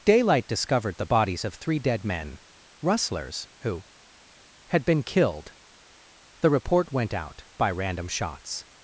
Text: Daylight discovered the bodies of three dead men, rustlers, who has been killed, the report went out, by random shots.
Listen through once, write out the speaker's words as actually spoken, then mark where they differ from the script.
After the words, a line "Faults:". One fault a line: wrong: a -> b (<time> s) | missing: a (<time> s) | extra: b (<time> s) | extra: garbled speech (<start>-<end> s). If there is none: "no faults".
Daylight discovered the bodies of three dead men, rustlers, who had been killed, the report went out, by random shots.
Faults:
wrong: has -> had (4.7 s)